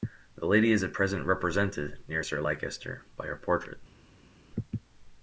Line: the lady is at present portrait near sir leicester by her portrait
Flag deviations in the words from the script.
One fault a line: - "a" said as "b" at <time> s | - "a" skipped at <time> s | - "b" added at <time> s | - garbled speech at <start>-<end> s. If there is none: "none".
- "portrait" said as "represented" at 1.2 s